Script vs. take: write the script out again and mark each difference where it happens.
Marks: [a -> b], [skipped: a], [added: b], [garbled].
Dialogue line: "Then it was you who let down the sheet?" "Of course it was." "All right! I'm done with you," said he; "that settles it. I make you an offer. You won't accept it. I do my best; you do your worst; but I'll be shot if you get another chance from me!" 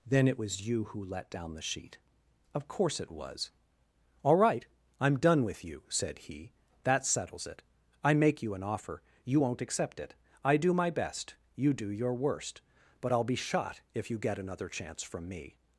"Then it was you who let down the sheet?" "Of course it was." "All right! I'm done with you," said he; "that settles it. I make you an offer. You won't accept it. I do my best; you do your worst; but I'll be shot if you get another chance from me!"